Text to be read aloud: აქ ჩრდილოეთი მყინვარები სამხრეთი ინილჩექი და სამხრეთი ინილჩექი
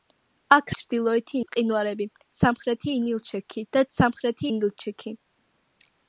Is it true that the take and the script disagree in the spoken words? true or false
false